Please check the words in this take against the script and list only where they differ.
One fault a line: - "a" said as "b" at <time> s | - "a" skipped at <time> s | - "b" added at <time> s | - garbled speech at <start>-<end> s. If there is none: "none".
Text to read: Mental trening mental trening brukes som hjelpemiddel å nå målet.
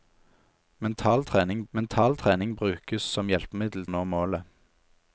none